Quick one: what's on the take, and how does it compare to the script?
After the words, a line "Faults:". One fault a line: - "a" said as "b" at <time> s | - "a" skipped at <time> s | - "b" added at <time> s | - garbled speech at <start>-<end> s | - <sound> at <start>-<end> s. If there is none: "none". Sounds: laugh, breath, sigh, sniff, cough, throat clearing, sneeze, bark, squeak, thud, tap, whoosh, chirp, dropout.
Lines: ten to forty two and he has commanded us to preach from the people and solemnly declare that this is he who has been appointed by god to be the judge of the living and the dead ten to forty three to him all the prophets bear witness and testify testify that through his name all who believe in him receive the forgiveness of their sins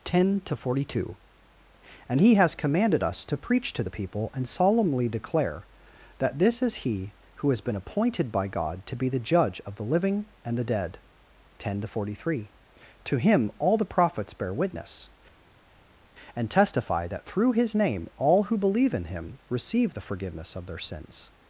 ten to forty two and he has commanded us to preach to the people and solemnly declare that this is he who has been appointed by god to be the judge of the living and the dead ten to forty three to him all the prophets bear witness and testify that through his name all who believe in him receive the forgiveness of their sins
Faults:
- "from" said as "to" at 3.7 s
- "testify" skipped at 17.1 s